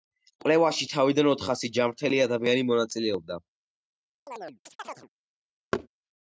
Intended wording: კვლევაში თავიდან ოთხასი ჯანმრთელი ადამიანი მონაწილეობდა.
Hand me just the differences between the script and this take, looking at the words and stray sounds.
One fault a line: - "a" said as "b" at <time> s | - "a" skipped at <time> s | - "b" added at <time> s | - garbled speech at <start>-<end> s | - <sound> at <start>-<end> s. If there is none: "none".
- chirp at 4.3-5.1 s
- thud at 5.7-5.9 s